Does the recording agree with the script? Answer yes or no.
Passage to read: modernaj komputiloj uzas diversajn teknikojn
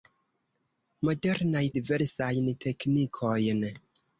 no